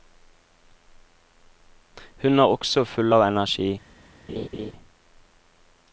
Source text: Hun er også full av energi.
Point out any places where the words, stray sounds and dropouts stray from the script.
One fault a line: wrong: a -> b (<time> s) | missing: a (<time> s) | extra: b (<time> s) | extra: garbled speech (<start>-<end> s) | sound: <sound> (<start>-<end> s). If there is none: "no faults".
sound: laugh (4.3-4.7 s)